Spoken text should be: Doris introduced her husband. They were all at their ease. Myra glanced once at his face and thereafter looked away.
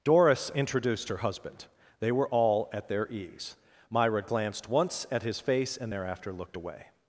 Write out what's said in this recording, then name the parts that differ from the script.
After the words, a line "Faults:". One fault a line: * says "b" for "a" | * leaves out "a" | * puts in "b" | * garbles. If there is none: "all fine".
Doris introduced her husband. They were all at their ease. Myra glanced once at his face and thereafter looked away.
Faults:
all fine